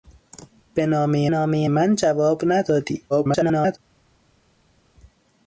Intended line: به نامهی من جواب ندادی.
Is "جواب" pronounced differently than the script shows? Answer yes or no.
no